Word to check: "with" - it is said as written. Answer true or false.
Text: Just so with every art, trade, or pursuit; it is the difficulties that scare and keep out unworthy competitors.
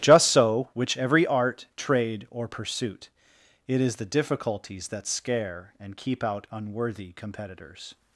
false